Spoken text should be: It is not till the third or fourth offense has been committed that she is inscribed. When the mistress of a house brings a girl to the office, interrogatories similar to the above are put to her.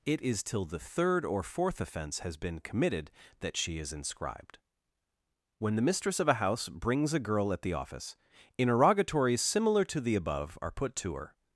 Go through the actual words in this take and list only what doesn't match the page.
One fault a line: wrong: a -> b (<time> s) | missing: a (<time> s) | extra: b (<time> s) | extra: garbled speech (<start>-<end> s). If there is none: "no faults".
missing: not (0.4 s)
wrong: to -> at (7.5 s)